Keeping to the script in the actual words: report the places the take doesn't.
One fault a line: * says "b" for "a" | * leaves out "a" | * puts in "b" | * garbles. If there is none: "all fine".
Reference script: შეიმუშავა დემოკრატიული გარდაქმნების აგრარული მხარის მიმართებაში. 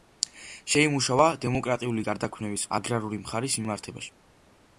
all fine